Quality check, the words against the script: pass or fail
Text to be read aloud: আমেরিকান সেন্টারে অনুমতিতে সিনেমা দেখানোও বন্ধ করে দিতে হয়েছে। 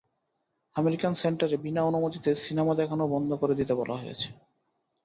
fail